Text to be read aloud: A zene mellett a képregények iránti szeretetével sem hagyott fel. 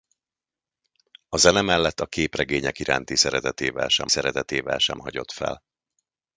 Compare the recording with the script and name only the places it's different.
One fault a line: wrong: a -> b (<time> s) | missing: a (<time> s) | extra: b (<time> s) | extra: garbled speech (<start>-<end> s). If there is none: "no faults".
extra: szeretetével sem (4.1 s)